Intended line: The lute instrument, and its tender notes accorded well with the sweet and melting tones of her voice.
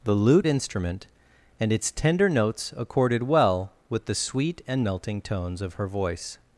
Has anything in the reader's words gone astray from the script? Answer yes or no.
no